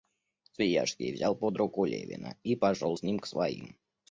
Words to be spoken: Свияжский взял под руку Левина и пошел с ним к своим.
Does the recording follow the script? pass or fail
pass